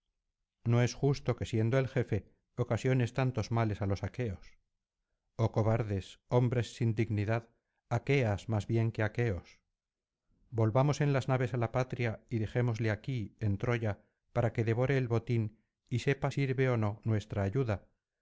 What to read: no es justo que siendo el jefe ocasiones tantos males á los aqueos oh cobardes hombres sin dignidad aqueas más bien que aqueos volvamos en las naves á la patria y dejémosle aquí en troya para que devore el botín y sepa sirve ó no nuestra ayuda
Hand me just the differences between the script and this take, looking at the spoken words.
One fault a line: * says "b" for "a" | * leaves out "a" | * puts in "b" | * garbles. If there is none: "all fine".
all fine